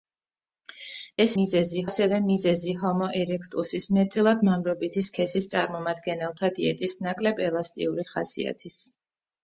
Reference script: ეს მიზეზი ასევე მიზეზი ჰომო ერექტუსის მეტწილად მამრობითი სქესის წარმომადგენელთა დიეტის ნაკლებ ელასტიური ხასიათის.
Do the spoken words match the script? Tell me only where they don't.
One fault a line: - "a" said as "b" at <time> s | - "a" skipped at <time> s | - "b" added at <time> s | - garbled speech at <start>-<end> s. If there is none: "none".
none